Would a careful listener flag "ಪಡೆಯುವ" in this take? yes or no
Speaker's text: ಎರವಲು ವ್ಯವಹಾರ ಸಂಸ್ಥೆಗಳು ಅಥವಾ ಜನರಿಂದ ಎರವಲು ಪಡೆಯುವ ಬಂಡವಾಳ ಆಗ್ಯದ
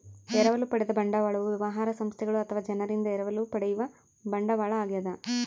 no